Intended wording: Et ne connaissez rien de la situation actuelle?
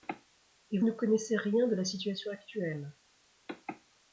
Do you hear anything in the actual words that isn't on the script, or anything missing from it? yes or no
no